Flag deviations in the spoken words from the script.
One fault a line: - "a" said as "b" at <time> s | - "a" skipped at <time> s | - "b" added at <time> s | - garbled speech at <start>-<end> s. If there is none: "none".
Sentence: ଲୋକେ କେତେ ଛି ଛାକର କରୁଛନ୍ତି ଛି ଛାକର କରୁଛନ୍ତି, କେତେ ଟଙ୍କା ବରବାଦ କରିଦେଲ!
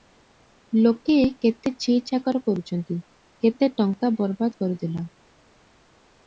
- "ଛି ଛାକର କରୁଛନ୍ତି" skipped at 3.0 s